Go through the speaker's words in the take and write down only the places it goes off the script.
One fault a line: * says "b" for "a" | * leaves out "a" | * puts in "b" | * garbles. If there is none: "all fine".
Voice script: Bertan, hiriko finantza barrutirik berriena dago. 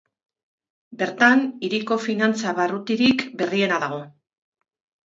all fine